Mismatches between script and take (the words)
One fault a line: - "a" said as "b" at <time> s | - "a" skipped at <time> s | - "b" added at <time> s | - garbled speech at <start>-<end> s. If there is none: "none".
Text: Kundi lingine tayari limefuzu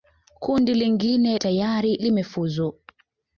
none